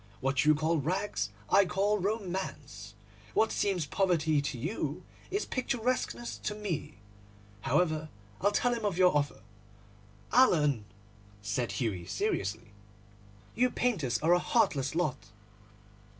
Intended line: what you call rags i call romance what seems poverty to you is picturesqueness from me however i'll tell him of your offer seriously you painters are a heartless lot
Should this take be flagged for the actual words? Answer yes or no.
yes